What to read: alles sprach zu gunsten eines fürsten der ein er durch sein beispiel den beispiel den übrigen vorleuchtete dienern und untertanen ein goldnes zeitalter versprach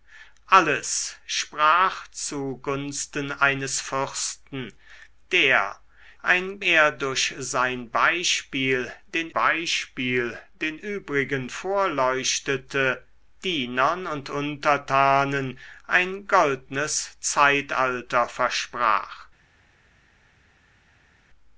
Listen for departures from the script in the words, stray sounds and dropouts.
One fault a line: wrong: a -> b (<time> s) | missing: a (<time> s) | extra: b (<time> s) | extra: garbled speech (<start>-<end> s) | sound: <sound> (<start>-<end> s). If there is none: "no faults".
no faults